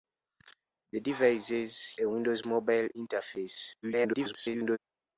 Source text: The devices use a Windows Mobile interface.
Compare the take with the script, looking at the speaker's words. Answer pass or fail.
fail